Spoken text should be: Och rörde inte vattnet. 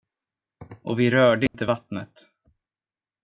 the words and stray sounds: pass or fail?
fail